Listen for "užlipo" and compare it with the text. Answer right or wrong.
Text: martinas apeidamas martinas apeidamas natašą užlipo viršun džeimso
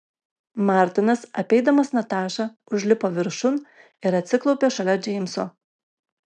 right